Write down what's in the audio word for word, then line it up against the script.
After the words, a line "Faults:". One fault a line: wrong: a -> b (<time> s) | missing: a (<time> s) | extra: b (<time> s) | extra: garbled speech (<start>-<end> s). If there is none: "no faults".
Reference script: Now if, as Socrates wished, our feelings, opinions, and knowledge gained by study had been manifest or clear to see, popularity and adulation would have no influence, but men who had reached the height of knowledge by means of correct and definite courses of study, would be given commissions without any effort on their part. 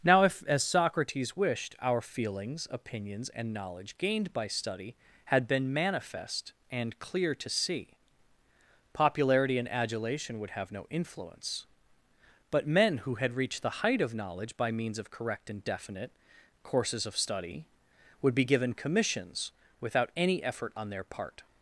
Now if, as Socrates wished, our feelings, opinions, and knowledge gained by study had been manifest and clear to see, popularity and adulation would have no influence, but men who had reached the height of knowledge by means of correct and definite courses of study, would be given commissions without any effort on their part.
Faults:
wrong: or -> and (6.7 s)